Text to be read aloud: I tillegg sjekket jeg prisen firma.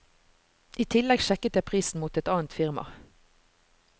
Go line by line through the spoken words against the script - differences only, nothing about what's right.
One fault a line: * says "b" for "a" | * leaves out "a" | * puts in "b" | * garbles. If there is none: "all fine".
* puts in "mot et annet"